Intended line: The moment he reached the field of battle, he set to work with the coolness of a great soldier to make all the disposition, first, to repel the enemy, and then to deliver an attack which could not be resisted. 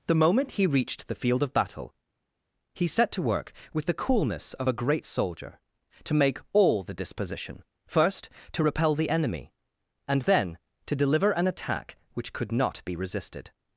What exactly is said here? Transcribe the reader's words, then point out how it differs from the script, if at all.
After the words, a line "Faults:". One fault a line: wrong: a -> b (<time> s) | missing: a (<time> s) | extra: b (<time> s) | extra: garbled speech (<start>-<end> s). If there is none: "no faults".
The moment he reached the field of battle, he set to work with the coolness of a great soldier to make all the disposition, first, to repel the enemy, and then to deliver an attack which could not be resisted.
Faults:
no faults